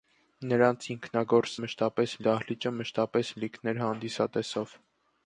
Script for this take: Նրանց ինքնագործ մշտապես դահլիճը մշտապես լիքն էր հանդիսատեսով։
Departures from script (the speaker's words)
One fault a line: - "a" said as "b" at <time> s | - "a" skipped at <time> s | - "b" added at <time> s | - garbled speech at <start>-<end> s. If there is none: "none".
none